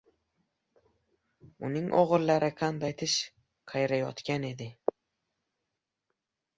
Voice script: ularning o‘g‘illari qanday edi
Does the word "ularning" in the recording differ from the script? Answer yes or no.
yes